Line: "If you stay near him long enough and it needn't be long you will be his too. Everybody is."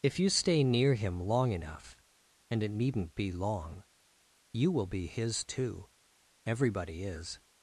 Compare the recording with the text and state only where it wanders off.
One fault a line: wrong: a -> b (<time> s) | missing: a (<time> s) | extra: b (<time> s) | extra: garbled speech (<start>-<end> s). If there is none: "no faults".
no faults